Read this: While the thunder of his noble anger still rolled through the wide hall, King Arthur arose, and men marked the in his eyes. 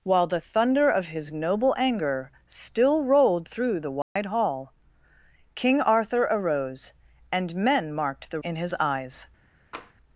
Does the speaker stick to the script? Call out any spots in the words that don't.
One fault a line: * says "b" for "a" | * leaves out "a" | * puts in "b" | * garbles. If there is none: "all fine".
all fine